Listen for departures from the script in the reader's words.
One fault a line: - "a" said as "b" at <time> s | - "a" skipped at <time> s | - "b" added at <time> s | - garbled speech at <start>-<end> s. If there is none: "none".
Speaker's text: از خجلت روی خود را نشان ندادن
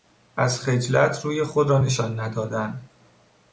none